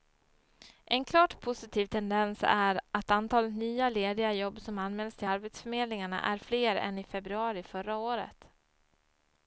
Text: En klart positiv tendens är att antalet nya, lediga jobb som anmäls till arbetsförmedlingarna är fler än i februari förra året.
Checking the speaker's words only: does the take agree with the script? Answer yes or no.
yes